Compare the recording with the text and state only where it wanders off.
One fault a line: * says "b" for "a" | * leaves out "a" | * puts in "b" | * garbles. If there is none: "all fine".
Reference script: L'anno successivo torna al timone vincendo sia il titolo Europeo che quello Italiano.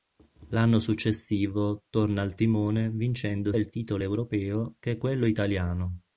* leaves out "sia"